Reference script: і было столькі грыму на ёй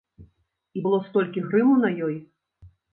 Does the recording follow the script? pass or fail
pass